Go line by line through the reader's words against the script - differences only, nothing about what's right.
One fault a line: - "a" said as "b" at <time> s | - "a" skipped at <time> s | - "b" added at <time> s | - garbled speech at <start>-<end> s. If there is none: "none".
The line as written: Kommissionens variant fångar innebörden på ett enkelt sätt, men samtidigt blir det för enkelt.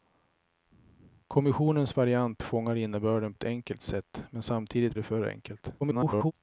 - "på" skipped at 3.3 s
- "blir" skipped at 5.0 s
- garbled speech at 5.8-6.3 s